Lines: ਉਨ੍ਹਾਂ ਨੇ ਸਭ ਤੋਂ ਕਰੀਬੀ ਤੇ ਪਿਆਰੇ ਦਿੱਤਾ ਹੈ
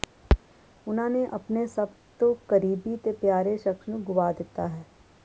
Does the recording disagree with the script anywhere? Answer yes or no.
yes